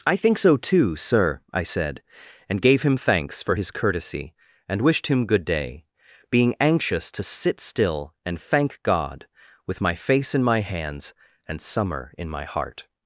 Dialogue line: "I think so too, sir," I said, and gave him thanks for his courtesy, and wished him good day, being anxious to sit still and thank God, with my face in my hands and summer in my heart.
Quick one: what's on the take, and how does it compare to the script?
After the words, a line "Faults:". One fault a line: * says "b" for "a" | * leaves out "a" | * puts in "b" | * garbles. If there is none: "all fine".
"I think so too, sir," I said, and gave him thanks for his courtesy, and wished him good day, being anxious to sit still and thank God, with my face in my hands and summer in my heart.
Faults:
all fine